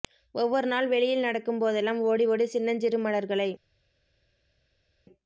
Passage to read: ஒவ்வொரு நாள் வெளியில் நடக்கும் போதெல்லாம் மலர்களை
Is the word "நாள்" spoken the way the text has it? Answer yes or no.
yes